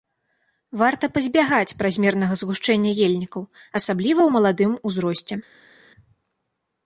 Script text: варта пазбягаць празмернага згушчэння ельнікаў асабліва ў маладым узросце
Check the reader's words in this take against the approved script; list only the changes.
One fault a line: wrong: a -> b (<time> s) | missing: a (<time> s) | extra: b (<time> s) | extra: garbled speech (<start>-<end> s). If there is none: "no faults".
no faults